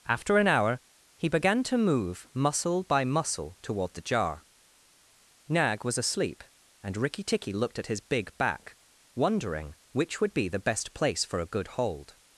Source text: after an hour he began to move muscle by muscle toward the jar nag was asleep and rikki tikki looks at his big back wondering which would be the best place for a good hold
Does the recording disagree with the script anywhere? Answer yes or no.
yes